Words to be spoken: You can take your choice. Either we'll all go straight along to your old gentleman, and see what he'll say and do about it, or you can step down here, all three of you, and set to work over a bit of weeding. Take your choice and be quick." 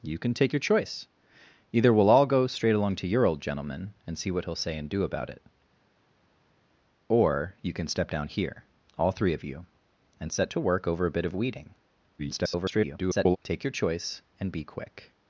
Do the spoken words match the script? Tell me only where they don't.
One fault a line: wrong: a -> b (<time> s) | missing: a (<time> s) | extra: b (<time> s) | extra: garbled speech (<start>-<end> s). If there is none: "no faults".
extra: garbled speech (12.2-13.4 s)